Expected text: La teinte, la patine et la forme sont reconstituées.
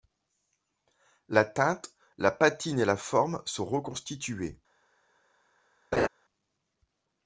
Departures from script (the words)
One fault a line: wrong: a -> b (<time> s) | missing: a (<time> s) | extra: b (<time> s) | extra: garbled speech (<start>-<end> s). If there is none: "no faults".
no faults